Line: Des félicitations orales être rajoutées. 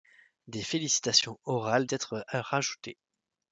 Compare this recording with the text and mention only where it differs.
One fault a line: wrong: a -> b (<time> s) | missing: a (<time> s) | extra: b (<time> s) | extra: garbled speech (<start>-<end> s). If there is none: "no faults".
no faults